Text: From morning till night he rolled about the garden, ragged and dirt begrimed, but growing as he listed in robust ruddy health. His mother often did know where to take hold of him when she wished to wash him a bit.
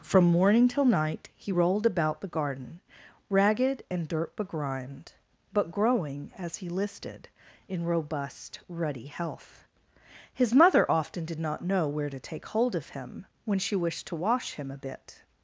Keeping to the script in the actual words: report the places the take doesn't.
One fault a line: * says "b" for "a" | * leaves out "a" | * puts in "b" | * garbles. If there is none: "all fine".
* puts in "not"